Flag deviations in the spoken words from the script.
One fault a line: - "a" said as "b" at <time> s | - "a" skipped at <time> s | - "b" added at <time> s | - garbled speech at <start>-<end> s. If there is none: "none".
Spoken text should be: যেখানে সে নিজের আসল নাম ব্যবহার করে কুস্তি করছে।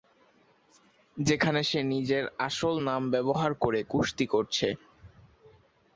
none